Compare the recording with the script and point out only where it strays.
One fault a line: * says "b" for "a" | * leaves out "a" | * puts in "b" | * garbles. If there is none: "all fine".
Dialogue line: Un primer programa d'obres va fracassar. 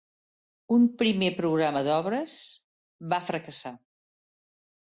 all fine